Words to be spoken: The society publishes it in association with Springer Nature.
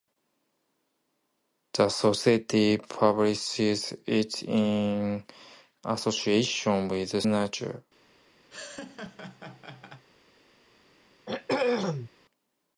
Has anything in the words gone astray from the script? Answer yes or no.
yes